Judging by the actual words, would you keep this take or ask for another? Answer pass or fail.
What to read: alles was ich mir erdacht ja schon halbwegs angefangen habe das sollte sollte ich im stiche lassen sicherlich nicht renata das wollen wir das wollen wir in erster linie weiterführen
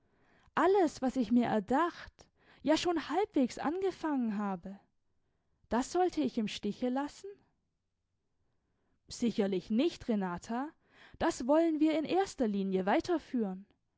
fail